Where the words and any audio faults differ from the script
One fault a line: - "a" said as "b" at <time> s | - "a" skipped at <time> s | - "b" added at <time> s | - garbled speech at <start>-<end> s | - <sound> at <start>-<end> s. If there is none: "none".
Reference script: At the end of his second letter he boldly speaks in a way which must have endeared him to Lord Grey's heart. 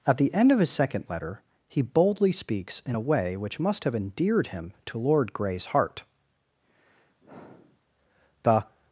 - sigh at 6.6-7.8 s
- "The" added at 8.4 s